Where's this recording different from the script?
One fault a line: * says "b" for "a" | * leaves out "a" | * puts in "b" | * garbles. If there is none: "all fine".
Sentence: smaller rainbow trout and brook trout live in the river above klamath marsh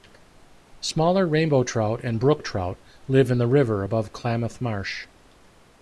all fine